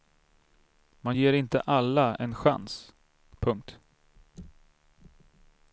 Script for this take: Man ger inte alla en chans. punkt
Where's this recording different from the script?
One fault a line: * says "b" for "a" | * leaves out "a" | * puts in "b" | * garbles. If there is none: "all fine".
all fine